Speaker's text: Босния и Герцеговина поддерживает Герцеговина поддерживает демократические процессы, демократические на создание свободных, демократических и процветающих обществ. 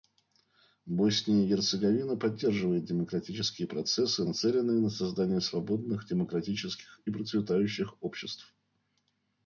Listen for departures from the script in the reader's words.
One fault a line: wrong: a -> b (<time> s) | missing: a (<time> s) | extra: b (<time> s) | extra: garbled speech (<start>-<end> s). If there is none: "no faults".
missing: Герцеговина поддерживает (2.9 s)
wrong: демократические -> нацеленные (4.2 s)